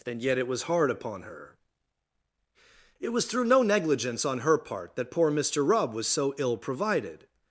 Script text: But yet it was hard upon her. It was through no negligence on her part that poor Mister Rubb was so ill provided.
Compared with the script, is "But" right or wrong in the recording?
wrong